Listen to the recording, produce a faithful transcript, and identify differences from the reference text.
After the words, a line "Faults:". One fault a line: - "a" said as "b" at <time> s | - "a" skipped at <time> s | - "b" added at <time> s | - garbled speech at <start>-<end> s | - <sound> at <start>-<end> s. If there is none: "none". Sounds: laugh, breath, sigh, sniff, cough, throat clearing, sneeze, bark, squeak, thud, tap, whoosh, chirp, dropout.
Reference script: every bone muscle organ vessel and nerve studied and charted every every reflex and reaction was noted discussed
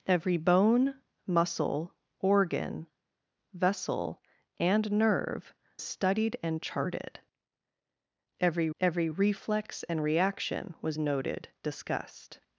every bone muscle organ vessel and nerve studied and charted every every reflex and reaction was noted discussed
Faults:
none